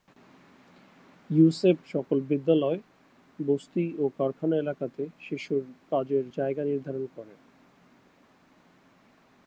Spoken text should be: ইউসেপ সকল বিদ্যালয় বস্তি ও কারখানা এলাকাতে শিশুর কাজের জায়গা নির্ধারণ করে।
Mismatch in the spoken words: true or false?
false